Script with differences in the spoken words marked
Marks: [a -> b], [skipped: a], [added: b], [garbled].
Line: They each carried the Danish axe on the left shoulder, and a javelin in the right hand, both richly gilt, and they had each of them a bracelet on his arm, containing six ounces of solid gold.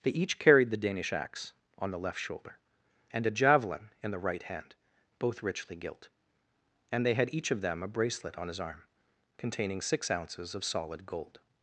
They each carried the Danish axe on the left shoulder, and a javelin in the right hand, both richly gilt, and they had each of them a bracelet on his arm, containing six ounces of solid gold.